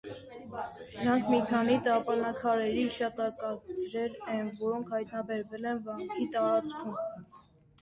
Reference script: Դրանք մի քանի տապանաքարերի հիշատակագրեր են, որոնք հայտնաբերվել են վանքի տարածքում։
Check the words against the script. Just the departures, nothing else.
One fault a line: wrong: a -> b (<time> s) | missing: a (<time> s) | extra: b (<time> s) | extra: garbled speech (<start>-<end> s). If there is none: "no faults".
no faults